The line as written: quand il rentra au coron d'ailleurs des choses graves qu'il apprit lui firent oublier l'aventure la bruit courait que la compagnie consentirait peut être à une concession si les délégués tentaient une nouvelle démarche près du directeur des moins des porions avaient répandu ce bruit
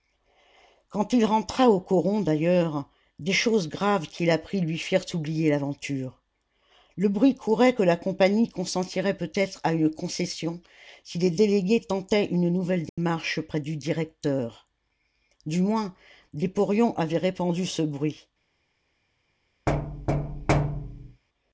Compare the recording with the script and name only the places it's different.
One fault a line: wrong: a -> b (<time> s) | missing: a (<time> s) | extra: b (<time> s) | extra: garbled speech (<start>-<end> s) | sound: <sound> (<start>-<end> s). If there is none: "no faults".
wrong: la -> le (6.9 s)
sound: dropout (12.9-13.0 s)
wrong: des -> du (15.4 s)
sound: thud (19.7-21.2 s)